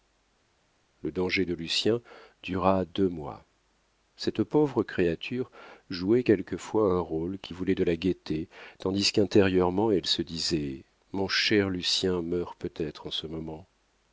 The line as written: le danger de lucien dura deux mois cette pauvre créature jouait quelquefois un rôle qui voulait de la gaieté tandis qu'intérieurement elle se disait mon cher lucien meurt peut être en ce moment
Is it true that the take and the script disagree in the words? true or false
false